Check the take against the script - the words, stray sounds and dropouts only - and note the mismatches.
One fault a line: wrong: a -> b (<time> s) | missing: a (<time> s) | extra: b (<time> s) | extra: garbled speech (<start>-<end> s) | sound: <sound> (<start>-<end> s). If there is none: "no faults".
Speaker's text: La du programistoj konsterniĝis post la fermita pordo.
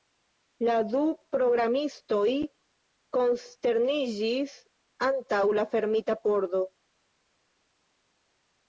wrong: post -> antaŭ (5.1 s)